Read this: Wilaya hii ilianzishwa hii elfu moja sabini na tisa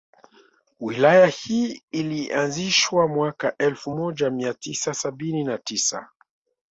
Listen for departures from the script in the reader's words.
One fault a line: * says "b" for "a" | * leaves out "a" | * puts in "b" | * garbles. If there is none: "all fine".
* says "mwaka" for "hii"
* puts in "mia tisa"